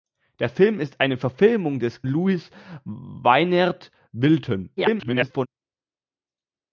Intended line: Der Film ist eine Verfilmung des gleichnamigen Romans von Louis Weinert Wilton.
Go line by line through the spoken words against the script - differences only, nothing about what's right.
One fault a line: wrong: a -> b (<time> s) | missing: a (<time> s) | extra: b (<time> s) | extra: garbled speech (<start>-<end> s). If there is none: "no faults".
missing: gleichnamigen Romans von (2.0 s)
extra: garbled speech (4.8-5.5 s)